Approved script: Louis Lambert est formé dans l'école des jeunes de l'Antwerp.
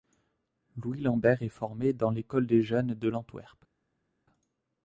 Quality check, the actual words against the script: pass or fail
pass